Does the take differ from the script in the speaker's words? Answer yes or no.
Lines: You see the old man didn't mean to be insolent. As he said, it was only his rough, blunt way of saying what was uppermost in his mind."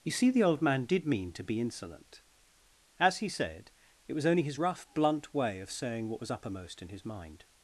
yes